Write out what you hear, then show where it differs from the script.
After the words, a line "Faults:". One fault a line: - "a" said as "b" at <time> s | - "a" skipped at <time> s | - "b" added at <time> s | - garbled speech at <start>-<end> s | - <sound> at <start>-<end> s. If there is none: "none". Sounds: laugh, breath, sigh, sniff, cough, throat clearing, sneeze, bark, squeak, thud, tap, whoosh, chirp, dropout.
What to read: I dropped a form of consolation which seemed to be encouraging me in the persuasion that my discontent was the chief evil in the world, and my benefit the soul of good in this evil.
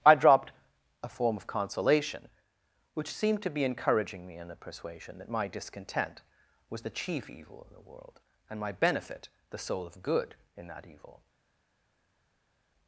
I dropped a form of consolation which seemed to be encouraging me in the persuasion that my discontent was the chief evil in the world, and my benefit the soul of good in that evil.
Faults:
- "this" said as "that" at 10.7 s